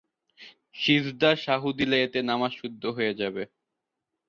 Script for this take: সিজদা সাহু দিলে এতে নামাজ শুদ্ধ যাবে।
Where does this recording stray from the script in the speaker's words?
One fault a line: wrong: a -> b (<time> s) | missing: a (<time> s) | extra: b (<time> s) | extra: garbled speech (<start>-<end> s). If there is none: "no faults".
extra: হয়ে (3.0 s)